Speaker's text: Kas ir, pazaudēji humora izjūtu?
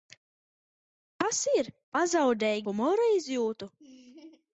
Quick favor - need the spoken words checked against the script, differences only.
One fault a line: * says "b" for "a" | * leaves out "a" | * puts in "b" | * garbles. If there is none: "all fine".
all fine